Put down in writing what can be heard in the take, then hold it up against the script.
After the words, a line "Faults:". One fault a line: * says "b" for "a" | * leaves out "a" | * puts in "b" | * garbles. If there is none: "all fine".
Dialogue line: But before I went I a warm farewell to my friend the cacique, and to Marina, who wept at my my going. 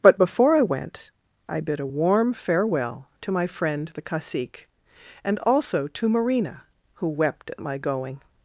But before I went I bid a warm farewell to my friend the cacique, and also to Marina, who wept at my going.
Faults:
* puts in "bid"
* puts in "also"
* leaves out "my"